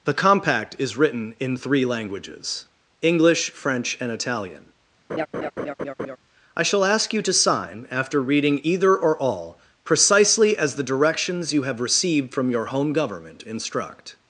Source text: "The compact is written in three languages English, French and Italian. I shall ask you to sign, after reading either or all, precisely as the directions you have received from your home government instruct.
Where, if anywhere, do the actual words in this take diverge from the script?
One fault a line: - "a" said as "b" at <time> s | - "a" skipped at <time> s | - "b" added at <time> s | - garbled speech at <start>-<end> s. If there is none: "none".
none